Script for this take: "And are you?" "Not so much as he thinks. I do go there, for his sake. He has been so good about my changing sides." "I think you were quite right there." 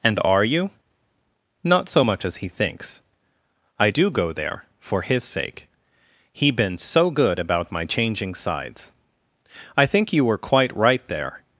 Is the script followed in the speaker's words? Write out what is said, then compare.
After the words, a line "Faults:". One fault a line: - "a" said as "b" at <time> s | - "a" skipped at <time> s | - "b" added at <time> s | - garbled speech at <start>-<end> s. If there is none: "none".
"And are you?" "Not so much as he thinks. I do go there, for his sake. He been so good about my changing sides." "I think you were quite right there."
Faults:
- "has" skipped at 6.5 s